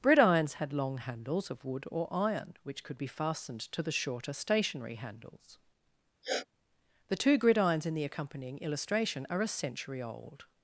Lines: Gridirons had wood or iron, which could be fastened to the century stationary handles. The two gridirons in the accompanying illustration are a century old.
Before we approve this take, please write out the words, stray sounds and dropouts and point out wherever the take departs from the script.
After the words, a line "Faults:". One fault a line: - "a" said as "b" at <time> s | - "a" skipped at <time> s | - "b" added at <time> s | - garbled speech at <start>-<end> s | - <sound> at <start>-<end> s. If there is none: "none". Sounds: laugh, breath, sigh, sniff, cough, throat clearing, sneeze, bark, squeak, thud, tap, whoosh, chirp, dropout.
Gridirons had long handles of wood or iron, which could be fastened to the shorter stationary handles. The two gridirons in the accompanying illustration are a century old.
Faults:
- "long handles of" added at 0.7 s
- "century" said as "shorter" at 3.9 s
- sniff at 6.2-6.5 s